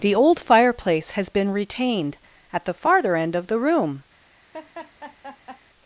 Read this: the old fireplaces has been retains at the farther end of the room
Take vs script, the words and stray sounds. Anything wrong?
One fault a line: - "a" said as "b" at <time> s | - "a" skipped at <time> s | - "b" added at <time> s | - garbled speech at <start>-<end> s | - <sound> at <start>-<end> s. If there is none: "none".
- "fireplaces" said as "fireplace" at 0.4 s
- "retains" said as "retained" at 1.5 s
- laugh at 4.5-5.6 s